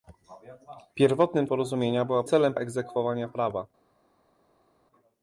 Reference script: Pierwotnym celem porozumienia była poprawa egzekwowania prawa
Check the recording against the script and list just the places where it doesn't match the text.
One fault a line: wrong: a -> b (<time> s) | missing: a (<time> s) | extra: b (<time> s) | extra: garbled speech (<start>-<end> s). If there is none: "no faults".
missing: celem (1.5 s)
wrong: poprawa -> celem (2.2 s)